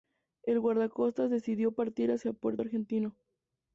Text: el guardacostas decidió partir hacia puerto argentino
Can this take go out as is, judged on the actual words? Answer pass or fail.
pass